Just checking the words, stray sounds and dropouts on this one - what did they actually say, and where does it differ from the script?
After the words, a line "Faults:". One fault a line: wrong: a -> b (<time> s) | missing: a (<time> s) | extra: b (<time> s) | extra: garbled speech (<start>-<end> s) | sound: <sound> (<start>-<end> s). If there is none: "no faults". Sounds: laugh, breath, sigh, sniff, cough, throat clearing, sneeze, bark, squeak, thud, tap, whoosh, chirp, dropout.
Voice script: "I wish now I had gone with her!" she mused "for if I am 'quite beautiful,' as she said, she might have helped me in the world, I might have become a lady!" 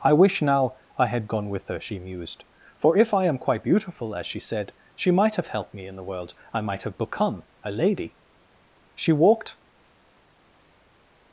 "I wish now I had gone with her!" she mused "for if I am 'quite beautiful,' as she said, she might have helped me in the world, I might have become a lady!" She walked
Faults:
extra: She walked (8.9 s)